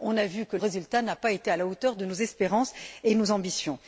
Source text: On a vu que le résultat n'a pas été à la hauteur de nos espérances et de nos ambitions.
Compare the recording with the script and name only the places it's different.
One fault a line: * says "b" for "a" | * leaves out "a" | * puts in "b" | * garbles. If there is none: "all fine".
* leaves out "le"